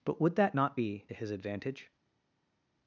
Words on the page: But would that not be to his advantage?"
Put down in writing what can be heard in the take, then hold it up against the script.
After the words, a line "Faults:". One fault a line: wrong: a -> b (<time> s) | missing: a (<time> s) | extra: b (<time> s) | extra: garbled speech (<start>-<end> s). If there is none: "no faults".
But would that not be to his advantage?"
Faults:
no faults